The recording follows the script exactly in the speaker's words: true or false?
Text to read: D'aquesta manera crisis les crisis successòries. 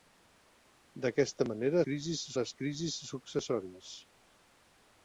true